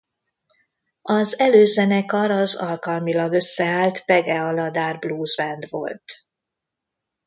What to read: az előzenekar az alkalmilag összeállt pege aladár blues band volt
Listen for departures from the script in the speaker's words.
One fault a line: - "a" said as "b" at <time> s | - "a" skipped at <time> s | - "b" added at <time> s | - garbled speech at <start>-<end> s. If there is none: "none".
none